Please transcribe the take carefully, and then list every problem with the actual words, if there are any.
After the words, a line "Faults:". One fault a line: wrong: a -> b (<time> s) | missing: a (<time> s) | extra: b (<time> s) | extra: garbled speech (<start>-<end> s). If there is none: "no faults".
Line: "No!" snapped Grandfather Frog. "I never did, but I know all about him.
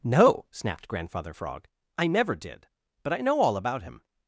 "No!" snapped Grandfather Frog. "I never did, but I know all about him.
Faults:
no faults